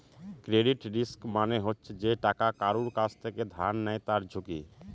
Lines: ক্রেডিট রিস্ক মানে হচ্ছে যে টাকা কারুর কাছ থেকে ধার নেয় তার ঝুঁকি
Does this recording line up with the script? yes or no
yes